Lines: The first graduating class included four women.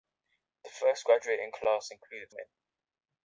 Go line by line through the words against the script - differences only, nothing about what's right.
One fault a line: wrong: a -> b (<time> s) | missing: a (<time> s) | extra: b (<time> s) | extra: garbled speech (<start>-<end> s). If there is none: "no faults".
missing: four (2.3 s)